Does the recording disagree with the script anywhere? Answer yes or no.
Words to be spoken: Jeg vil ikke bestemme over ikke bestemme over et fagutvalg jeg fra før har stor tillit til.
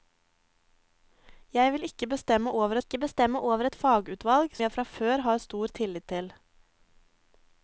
no